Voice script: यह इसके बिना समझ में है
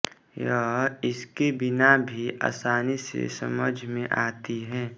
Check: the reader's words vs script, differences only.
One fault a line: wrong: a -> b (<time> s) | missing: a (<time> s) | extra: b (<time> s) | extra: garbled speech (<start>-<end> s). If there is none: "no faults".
extra: भी आसानी से (2.1 s)
extra: आती (4.2 s)